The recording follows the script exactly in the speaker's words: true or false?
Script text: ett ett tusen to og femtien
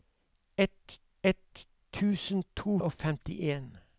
true